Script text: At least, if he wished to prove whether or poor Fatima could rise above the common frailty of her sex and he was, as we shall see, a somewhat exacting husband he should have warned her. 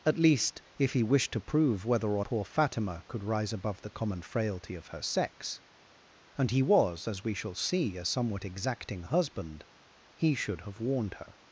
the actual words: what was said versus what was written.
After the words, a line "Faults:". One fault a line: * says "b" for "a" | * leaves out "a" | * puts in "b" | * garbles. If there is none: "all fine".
At least, if he wished to prove whether or poor Fatima could rise above the common frailty of her sex and he was, as we shall see, a somewhat exacting husband he should have warned her.
Faults:
all fine